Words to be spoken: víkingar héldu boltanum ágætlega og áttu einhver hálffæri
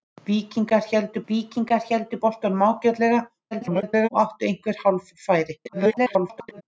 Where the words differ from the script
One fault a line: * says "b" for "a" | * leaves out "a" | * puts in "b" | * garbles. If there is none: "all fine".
* puts in "víkingar héldu"
* garbles
* garbles